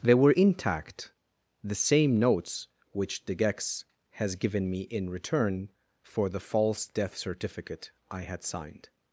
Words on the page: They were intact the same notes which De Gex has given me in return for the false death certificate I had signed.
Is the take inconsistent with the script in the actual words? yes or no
no